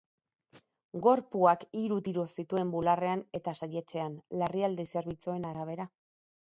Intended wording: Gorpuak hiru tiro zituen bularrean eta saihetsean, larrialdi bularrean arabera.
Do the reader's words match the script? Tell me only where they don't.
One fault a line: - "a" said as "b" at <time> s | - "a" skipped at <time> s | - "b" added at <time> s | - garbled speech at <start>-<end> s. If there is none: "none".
- "bularrean" said as "zerbitzuen" at 5.0 s